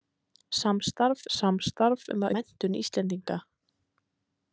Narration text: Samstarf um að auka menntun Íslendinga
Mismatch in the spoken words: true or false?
true